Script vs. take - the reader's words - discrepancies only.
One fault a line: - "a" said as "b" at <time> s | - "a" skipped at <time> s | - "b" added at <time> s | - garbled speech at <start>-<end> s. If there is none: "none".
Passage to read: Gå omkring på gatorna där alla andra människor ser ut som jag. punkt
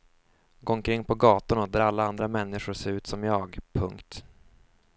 none